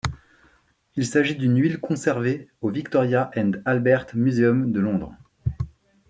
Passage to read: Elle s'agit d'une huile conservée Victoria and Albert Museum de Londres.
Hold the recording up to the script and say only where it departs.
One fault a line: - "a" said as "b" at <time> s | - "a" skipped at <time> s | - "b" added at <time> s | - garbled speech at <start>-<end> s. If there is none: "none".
- "Elle" said as "Il" at 0.9 s
- "au" added at 2.6 s